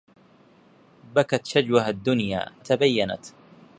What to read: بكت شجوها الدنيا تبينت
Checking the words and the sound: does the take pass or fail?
pass